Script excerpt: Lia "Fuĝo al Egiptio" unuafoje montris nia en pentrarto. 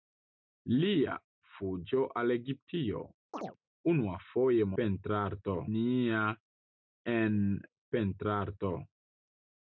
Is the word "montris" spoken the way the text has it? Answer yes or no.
no